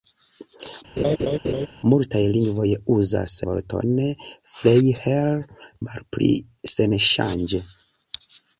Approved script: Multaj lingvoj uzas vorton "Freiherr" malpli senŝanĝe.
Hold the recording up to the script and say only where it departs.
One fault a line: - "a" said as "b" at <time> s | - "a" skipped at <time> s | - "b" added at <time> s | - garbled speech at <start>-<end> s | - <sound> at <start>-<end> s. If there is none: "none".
- laugh at 1.0-1.7 s